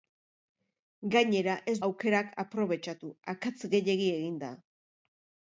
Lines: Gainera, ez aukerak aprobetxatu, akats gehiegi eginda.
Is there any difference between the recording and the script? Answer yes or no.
no